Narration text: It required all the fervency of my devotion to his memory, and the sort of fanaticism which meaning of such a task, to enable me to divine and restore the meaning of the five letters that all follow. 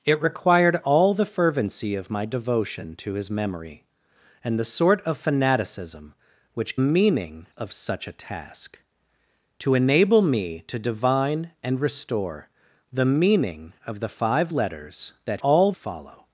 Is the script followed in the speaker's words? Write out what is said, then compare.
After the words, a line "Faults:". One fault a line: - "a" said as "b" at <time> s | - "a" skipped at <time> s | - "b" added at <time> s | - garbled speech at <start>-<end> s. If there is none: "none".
It required all the fervency of my devotion to his memory, and the sort of fanaticism which meaning of such a task, to enable me to divine and restore the meaning of the five letters that all follow.
Faults:
none